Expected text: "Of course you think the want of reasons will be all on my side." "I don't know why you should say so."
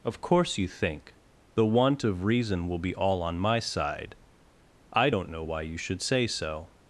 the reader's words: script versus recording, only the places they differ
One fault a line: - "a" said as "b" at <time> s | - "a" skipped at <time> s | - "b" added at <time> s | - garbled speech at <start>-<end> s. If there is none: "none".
- "reasons" said as "reason" at 2.2 s